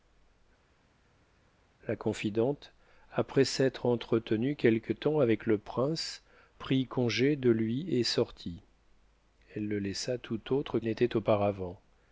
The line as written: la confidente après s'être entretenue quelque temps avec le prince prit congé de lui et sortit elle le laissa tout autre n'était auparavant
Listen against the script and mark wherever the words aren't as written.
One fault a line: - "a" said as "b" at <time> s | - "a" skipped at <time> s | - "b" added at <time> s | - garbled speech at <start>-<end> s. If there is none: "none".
none